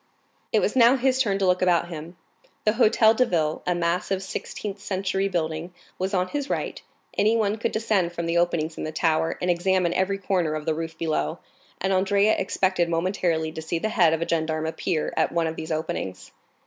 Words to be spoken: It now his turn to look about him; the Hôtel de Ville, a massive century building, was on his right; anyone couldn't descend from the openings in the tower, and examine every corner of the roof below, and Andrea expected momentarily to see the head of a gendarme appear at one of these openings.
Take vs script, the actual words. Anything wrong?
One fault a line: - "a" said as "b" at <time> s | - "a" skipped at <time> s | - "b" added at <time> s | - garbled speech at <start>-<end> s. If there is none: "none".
- "was" added at 0.6 s
- "sixteenth" added at 4.2 s
- "couldn't" said as "could" at 7.6 s